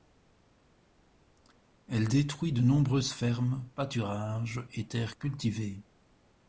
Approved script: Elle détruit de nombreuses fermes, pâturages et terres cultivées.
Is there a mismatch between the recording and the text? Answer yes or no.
no